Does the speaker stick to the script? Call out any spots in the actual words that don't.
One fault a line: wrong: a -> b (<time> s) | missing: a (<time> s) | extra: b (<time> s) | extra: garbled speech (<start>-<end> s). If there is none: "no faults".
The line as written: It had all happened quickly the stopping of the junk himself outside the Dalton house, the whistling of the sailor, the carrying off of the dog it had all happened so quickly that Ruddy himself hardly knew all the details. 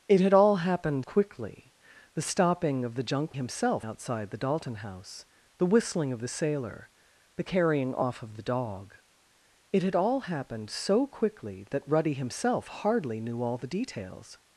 no faults